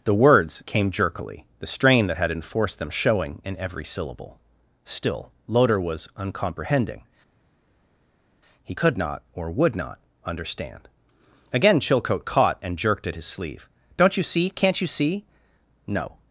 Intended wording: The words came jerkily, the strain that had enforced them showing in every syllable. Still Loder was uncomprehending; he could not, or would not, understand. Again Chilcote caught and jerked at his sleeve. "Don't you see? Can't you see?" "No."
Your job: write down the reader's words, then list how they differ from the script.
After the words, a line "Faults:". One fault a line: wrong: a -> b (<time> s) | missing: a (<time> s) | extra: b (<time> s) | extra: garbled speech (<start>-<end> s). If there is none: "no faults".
The words came jerkily, the strain that had enforced them showing in every syllable. Still Loder was uncomprehending; he could not, or would not, understand. Again Chilcote caught and jerked at his sleeve. "Don't you see? Can't you see?" "No."
Faults:
no faults